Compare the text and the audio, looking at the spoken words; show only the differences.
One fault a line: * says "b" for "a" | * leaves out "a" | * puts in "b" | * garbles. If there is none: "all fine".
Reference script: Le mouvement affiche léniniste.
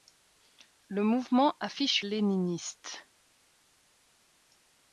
all fine